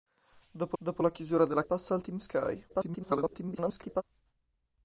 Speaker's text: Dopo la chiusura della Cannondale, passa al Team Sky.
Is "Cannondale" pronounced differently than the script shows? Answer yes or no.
yes